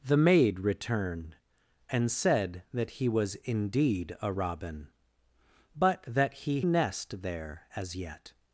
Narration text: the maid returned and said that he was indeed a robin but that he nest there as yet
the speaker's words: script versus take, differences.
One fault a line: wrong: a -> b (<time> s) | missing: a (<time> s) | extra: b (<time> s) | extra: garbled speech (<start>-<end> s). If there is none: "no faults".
no faults